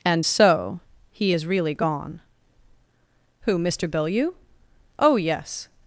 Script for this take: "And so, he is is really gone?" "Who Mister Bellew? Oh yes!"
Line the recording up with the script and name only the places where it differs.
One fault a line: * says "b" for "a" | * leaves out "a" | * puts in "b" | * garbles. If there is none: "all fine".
* leaves out "is"